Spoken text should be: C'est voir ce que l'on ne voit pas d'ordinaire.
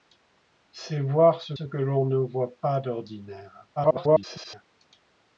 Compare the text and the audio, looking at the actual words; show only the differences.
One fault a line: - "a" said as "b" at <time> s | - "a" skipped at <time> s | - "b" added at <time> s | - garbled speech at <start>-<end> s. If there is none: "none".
- "ce" added at 1.5 s
- garbled speech at 3.8-4.6 s